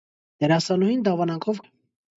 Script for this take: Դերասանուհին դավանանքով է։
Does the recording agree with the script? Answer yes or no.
yes